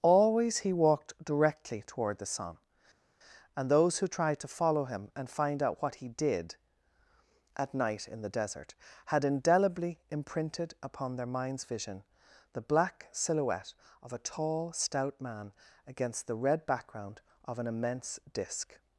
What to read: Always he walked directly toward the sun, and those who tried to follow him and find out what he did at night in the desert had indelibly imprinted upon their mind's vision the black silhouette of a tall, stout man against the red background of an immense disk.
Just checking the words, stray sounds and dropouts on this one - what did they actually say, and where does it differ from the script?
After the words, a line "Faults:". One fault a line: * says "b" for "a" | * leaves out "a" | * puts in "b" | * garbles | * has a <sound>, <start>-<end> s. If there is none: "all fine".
Always he walked directly toward the sun, and those who tried to follow him and find out what he did at night in the desert had indelibly imprinted upon their mind's vision the black silhouette of a tall, stout man against the red background of an immense disk.
Faults:
all fine